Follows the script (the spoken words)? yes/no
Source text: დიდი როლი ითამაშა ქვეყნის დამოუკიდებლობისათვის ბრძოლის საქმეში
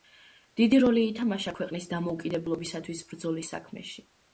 yes